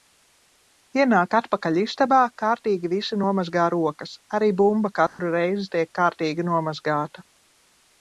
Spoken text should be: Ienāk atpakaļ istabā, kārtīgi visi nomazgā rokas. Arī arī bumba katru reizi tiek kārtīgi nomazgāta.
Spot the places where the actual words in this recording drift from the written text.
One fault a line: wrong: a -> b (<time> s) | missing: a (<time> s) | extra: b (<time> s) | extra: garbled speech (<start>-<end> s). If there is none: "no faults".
missing: arī (4.5 s)